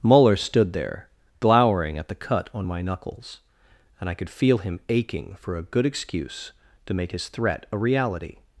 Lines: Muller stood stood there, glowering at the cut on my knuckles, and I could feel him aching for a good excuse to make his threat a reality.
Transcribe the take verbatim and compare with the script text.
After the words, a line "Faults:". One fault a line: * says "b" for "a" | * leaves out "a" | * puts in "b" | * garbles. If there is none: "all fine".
Muller stood there, glowering at the cut on my knuckles, and I could feel him aching for a good excuse to make his threat a reality.
Faults:
* leaves out "stood"